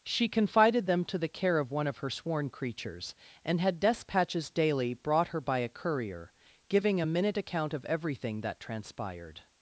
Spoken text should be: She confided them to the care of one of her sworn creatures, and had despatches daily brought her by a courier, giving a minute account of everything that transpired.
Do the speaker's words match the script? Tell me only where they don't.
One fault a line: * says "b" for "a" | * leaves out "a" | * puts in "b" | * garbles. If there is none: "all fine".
all fine